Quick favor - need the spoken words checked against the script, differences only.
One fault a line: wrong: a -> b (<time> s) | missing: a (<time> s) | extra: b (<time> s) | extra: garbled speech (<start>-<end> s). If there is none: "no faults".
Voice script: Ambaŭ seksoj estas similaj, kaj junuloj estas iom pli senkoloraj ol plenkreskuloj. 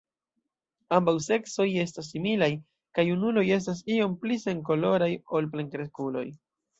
no faults